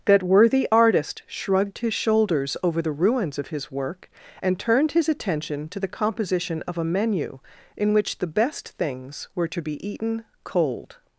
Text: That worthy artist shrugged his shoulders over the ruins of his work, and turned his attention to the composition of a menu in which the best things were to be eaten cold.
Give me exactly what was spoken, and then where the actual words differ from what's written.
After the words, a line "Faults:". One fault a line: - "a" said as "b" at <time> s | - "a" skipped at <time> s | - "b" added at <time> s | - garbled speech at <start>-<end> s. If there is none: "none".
That worthy artist shrugged his shoulders over the ruins of his work, and turned his attention to the composition of a menu in which the best things were to be eaten cold.
Faults:
none